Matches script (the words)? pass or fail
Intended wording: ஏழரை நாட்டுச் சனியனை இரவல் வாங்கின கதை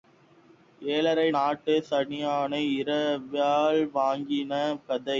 pass